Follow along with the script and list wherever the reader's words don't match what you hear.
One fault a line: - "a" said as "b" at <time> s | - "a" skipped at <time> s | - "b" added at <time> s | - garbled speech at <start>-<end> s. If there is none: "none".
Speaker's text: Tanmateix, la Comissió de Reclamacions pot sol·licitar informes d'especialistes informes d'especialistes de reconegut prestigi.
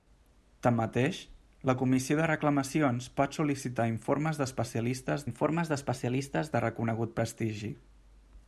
none